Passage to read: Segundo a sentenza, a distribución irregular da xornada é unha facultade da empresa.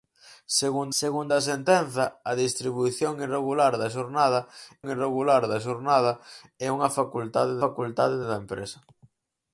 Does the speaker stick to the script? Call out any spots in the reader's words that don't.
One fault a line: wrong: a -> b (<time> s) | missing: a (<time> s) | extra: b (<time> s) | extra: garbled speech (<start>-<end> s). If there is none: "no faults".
extra: segundo (1.0 s)
extra: irregular da xornada (4.9 s)
extra: facultade (7.6 s)